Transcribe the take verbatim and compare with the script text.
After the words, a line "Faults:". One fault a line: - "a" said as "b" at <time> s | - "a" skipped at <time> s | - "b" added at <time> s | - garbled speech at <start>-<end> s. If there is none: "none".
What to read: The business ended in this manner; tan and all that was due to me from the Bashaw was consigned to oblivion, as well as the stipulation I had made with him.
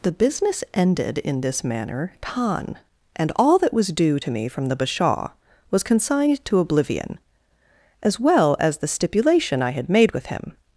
The business ended in this manner; tan and all that was due to me from the Bashaw was consigned to oblivion, as well as the stipulation I had made with him.
Faults:
none